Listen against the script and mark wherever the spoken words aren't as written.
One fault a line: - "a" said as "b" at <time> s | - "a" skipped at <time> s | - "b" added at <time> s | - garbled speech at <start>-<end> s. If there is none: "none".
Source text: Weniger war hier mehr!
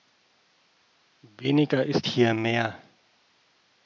- "war" said as "ist" at 1.8 s